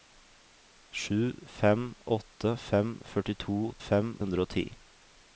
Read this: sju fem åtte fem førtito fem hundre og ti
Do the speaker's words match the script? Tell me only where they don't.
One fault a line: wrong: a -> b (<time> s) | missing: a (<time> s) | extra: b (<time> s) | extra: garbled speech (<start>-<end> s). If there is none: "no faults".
no faults